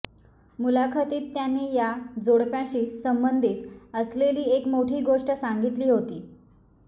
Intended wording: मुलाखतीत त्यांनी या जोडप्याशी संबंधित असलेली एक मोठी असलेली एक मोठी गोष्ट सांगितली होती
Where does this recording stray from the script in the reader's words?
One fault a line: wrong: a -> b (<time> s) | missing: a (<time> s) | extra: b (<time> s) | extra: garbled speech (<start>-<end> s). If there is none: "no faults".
missing: असलेली एक मोठी (5.0 s)